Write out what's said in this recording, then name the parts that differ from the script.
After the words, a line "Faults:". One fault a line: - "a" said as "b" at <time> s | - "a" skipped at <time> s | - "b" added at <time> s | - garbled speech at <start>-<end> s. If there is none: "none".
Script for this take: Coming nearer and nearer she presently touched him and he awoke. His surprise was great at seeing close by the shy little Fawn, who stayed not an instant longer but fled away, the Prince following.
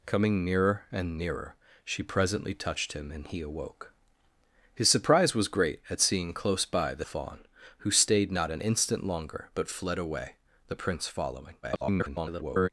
Coming nearer and nearer she presently touched him and he awoke. His surprise was great at seeing close by the Fawn, who stayed not an instant longer but fled away, the Prince following. [garbled]
Faults:
- "shy little" skipped at 7.1 s
- garbled speech at 11.6-12.7 s